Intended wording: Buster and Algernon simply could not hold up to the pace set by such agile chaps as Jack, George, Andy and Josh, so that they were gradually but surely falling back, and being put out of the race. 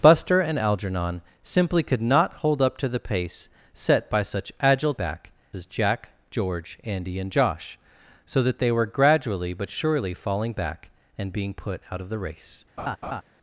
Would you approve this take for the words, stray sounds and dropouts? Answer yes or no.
no